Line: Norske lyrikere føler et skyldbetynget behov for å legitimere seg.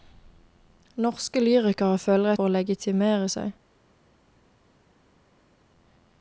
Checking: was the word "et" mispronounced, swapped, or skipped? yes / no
yes